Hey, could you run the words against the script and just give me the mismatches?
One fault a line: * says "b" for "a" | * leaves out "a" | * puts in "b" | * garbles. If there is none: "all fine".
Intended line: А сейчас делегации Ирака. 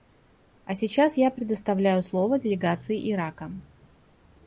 * puts in "я предоставляю слово"